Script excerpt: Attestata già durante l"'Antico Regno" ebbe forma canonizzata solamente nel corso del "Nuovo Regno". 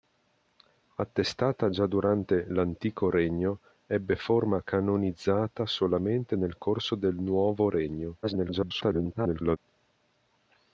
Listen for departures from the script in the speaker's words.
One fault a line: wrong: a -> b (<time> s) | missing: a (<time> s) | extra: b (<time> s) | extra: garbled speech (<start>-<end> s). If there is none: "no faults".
extra: garbled speech (8.2-9.6 s)